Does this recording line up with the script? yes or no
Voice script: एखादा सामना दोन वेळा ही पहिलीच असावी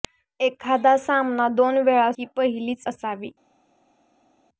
yes